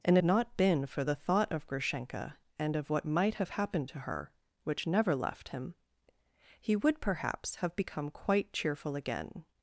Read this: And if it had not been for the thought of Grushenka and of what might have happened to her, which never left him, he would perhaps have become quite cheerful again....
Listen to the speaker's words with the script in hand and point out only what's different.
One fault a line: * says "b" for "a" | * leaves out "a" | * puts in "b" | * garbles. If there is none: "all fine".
* leaves out "if it had"